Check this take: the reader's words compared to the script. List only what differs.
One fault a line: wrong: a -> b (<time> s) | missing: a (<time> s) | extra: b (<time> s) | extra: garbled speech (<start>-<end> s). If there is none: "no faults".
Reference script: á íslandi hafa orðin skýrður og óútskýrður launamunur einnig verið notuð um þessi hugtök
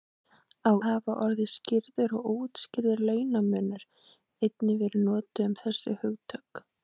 missing: íslandi (0.7 s)